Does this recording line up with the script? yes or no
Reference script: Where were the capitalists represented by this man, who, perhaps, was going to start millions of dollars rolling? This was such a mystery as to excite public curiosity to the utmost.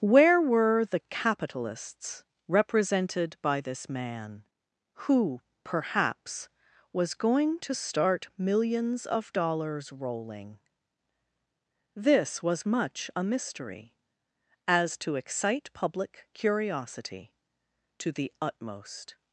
no